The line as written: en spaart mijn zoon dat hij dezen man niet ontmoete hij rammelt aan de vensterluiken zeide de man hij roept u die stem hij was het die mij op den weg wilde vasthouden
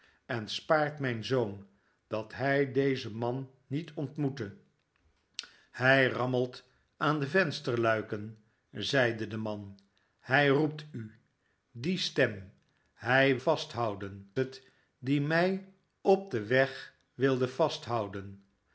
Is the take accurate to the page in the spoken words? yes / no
no